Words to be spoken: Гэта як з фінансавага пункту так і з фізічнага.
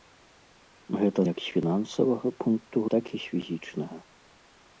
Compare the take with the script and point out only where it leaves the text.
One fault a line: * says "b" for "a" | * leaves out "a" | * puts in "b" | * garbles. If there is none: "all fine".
all fine